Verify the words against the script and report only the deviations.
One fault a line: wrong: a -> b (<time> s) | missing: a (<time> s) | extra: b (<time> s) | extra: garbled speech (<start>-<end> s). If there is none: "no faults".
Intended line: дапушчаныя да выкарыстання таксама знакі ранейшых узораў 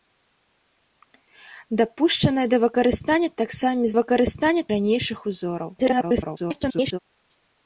wrong: знакі -> выкарыстання (4.0 s)
extra: garbled speech (5.8-7.0 s)